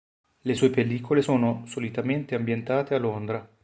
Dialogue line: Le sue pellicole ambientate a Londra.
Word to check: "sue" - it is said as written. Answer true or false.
true